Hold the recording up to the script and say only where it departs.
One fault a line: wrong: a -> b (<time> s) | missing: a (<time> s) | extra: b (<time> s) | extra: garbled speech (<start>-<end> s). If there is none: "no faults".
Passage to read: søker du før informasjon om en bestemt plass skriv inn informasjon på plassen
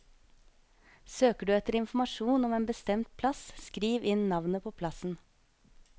wrong: før -> etter (1.6 s)
wrong: informasjon -> navnet (4.3 s)